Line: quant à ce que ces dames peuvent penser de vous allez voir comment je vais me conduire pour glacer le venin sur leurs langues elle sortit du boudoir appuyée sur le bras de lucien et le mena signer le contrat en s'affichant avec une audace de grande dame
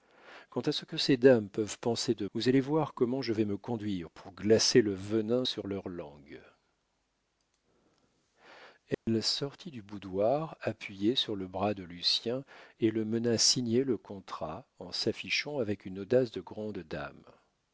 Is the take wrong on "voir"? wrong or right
right